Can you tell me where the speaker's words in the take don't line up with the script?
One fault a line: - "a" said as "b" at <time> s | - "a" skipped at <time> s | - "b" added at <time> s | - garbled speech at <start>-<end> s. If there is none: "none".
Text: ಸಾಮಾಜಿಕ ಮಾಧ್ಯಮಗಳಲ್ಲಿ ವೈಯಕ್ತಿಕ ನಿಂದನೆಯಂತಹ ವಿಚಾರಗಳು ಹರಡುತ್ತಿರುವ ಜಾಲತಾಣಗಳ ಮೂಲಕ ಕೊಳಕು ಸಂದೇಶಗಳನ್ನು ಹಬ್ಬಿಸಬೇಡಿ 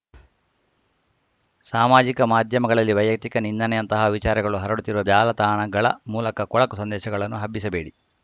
none